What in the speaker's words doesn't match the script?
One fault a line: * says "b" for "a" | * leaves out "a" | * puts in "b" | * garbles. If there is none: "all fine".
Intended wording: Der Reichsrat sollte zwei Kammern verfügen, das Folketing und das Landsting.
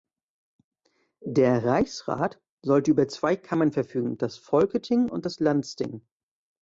* puts in "über"